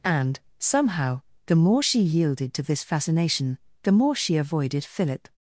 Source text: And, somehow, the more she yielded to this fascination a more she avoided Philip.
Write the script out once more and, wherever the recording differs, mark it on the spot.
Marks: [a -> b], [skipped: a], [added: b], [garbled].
And, somehow, the more she yielded to this fascination [a -> the] more she avoided Philip.